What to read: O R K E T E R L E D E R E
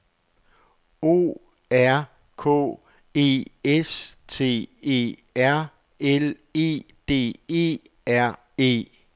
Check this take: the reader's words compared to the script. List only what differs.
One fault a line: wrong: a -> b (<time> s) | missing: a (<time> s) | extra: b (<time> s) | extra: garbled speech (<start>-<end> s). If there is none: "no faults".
extra: S (3.6 s)